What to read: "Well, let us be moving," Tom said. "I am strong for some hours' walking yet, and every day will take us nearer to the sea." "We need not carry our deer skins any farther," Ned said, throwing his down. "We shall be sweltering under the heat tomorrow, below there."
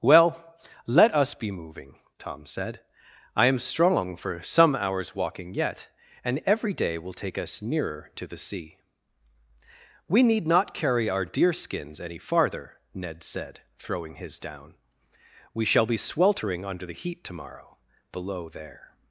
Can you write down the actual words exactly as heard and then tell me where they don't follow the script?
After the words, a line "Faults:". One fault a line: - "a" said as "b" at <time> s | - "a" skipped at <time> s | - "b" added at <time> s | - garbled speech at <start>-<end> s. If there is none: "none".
"Well, let us be moving," Tom said. "I am strong for some hours' walking yet, and every day will take us nearer to the sea." "We need not carry our deer skins any farther," Ned said, throwing his down. "We shall be sweltering under the heat tomorrow, below there."
Faults:
none